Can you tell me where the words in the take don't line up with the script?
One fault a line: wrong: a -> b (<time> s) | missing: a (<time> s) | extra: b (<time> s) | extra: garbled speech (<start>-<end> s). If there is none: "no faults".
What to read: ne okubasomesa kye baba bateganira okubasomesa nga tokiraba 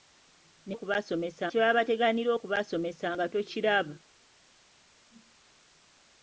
no faults